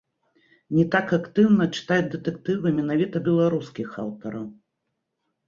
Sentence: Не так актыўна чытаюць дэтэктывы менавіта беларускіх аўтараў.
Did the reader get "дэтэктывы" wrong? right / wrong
right